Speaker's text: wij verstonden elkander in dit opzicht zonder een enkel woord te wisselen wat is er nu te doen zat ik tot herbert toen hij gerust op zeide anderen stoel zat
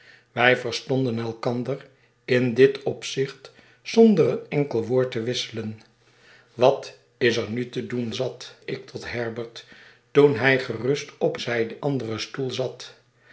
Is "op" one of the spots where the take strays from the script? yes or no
no